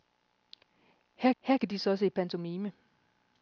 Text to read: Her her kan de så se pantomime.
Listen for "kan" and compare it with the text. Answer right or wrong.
right